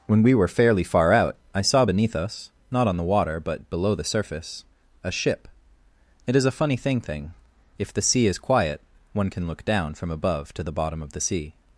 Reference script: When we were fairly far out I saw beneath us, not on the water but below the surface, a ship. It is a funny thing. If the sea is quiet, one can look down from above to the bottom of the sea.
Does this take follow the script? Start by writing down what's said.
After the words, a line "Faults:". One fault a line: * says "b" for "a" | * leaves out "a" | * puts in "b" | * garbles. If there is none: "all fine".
When we were fairly far out I saw beneath us, not on the water but below the surface, a ship. It is a funny thing thing. If the sea is quiet, one can look down from above to the bottom of the sea.
Faults:
* puts in "thing"